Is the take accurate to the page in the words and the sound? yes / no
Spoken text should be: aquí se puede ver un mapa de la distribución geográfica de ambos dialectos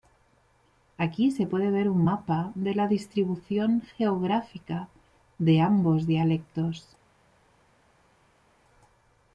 yes